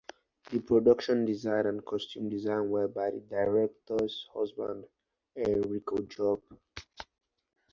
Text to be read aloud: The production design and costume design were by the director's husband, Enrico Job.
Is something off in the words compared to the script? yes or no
no